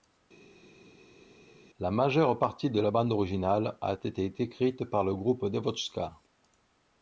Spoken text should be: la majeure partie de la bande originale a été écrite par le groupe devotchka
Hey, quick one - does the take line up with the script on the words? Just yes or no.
yes